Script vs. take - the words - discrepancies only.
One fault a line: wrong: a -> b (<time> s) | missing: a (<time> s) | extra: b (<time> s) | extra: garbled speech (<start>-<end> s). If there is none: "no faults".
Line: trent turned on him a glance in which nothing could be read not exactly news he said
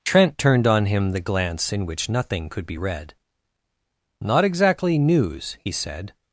wrong: a -> the (1.1 s)